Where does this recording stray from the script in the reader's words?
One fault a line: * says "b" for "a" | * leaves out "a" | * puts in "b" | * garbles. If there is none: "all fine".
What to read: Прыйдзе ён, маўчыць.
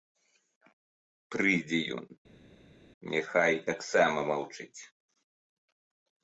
* puts in "няхай таксама"